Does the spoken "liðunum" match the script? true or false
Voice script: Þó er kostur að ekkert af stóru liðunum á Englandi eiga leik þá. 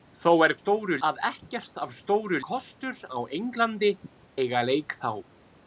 false